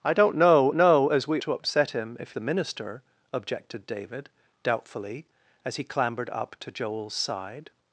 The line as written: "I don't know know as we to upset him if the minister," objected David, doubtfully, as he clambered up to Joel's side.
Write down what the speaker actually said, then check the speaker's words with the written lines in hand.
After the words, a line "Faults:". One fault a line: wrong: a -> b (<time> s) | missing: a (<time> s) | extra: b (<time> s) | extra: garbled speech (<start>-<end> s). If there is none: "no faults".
"I don't know know as we to upset him if the minister," objected David, doubtfully, as he clambered up to Joel's side.
Faults:
no faults